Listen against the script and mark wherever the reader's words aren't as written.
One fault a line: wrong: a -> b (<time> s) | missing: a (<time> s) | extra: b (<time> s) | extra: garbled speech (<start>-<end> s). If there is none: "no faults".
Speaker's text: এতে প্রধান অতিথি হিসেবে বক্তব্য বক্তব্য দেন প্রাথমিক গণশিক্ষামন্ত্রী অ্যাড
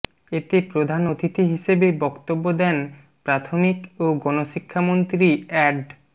missing: বক্তব্য (2.4 s)
extra: ও (4.0 s)